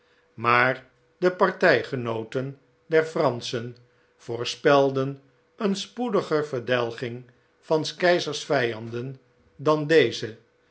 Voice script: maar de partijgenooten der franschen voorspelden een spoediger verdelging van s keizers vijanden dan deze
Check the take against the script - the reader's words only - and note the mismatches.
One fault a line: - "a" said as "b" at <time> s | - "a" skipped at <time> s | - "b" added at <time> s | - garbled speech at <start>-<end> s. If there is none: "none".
none